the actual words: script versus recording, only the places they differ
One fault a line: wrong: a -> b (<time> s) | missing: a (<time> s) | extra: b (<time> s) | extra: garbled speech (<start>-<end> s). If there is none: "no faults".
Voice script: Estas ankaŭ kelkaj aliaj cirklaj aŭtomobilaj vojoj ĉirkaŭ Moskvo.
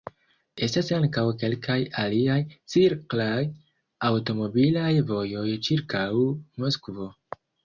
no faults